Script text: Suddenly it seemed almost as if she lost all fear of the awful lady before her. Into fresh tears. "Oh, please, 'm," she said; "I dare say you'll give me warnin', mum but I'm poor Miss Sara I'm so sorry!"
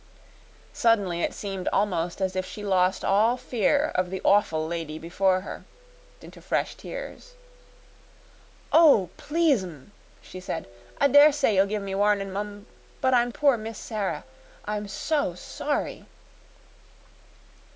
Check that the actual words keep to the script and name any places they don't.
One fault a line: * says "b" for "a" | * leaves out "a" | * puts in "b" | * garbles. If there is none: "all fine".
all fine